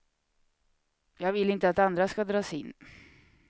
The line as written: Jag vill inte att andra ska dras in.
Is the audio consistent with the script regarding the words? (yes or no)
yes